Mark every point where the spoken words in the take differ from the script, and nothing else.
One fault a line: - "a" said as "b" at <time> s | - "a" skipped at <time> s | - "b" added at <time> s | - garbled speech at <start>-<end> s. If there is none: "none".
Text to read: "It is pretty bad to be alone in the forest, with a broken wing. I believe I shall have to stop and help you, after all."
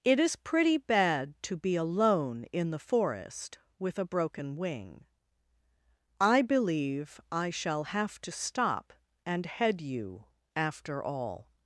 - "help" said as "head" at 9.4 s